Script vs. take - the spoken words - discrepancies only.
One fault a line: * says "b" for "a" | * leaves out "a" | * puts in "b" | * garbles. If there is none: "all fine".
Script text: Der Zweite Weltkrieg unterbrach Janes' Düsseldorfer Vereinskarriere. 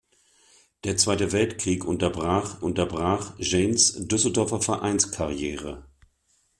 * puts in "unterbrach"